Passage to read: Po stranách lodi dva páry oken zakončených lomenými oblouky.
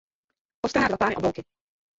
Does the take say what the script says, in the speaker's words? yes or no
no